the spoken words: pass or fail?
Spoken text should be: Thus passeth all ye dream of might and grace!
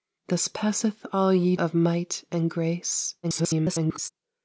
fail